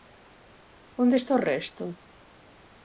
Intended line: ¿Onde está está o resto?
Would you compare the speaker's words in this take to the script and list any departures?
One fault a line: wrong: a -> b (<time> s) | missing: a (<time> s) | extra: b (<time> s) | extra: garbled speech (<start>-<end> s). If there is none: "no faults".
missing: está (1.3 s)